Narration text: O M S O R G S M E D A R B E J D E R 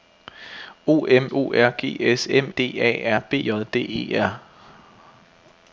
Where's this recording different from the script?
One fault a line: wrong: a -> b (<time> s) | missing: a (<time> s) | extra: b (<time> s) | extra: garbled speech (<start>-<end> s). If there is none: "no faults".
missing: S (1.3 s)
missing: E (2.5 s)
missing: E (3.4 s)